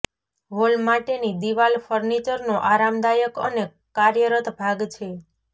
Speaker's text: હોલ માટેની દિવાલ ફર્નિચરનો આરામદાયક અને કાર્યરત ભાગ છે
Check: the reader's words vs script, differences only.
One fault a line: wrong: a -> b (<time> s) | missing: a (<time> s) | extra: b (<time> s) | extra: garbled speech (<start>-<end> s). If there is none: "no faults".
no faults